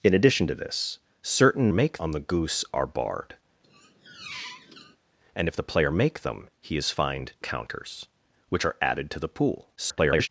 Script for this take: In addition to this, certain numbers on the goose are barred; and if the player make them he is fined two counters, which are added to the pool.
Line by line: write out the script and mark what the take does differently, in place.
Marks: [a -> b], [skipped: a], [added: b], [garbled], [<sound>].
In addition to this, certain [numbers -> make] on the goose are barred; [squeak] and if the player make them he is fined [skipped: two] counters, which are added to the pool. [garbled]